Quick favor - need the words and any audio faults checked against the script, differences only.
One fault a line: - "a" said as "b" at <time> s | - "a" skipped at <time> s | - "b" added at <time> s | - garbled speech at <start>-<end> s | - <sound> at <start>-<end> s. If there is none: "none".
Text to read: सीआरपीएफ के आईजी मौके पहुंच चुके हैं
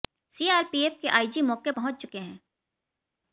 none